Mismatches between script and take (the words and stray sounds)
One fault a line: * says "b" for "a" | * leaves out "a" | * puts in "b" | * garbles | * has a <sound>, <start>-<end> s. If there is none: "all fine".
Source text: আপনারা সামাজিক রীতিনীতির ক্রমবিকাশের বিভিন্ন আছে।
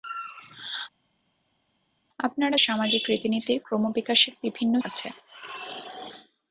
all fine